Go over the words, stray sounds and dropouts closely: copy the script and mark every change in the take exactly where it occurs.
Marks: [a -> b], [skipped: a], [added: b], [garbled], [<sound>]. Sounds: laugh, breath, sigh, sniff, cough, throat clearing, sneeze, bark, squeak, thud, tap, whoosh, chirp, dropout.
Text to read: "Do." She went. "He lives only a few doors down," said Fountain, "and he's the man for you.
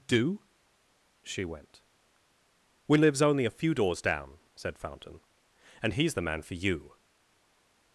"Do." She went. ["He -> We] lives only a few doors down," said Fountain, "and he's the man for you.